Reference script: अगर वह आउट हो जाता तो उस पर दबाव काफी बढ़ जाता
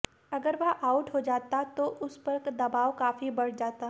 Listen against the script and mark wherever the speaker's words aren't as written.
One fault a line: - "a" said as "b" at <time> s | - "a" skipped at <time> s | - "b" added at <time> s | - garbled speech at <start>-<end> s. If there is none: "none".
none